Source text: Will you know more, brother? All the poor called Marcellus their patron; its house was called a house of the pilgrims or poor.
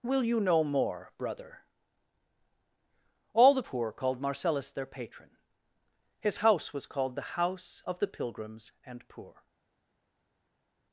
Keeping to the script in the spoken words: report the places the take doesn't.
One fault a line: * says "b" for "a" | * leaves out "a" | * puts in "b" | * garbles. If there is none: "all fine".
* says "his" for "its"
* says "the" for "a"
* says "and" for "or"